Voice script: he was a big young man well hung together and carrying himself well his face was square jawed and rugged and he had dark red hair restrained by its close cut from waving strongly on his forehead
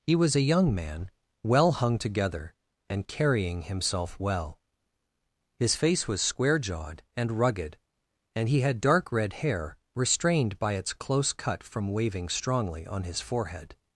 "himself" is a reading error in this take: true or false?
false